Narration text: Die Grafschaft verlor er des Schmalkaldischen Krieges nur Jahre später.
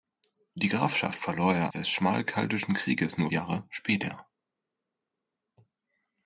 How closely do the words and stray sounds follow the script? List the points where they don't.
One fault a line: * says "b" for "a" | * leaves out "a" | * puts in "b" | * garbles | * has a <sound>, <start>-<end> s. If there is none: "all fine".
all fine